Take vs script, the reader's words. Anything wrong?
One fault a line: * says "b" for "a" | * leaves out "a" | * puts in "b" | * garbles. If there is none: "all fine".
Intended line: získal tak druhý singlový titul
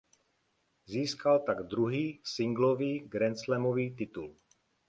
* puts in "grandslamový"